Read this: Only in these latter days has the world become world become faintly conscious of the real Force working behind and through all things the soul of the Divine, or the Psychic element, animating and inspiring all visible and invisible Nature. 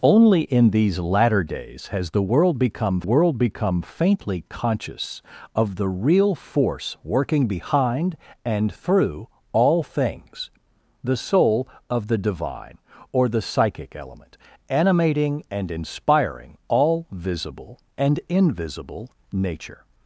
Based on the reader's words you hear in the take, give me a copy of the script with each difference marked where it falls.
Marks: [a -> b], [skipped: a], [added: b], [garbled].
Only in these latter days has the world become world become faintly conscious of the real Force working behind and through all things the soul of the Divine, or the Psychic element, animating and inspiring all visible and invisible Nature.